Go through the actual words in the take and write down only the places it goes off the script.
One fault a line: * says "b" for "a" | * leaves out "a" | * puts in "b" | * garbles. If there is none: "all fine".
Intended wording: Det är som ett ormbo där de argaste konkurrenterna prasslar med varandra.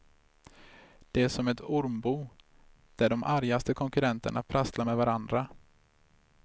all fine